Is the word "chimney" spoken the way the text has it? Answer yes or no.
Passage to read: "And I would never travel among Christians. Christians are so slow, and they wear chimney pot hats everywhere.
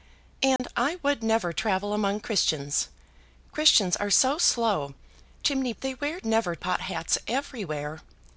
no